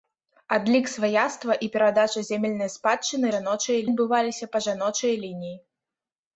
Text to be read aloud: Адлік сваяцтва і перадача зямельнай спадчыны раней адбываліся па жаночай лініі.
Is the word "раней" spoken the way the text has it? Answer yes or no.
no